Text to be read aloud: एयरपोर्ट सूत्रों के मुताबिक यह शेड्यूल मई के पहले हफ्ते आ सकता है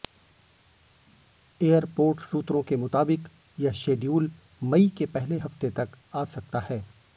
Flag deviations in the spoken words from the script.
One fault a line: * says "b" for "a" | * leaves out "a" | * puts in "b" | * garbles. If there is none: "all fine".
* puts in "तक"